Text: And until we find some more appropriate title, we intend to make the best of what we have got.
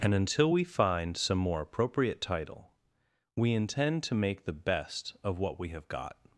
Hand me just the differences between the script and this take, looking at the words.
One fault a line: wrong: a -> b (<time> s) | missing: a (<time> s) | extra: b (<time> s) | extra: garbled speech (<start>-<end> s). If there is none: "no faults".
no faults